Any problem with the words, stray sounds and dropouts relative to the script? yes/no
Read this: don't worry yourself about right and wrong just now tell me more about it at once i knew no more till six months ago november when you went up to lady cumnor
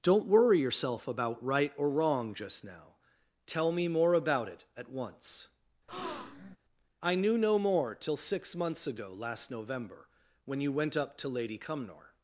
yes